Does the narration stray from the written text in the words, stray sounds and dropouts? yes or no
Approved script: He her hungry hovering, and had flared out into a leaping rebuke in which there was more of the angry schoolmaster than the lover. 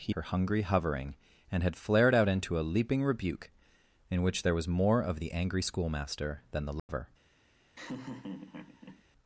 yes